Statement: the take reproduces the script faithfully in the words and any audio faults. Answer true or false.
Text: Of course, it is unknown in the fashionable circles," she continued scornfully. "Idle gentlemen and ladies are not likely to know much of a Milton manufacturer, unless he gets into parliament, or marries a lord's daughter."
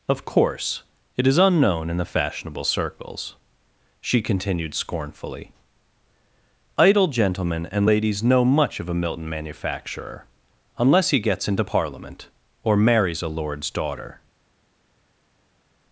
false